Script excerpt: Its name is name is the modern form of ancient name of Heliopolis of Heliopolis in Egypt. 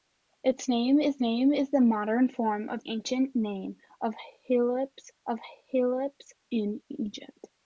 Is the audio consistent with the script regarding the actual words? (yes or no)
yes